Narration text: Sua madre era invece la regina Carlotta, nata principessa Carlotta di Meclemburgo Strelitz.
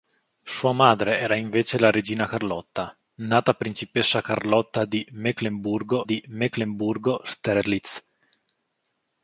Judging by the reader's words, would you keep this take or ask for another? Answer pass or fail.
fail